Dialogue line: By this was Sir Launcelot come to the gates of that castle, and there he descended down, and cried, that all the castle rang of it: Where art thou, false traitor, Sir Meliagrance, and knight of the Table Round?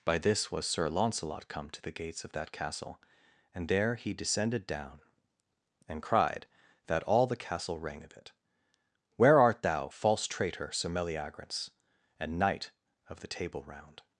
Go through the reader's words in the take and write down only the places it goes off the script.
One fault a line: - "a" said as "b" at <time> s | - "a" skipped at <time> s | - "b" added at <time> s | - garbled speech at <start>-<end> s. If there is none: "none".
none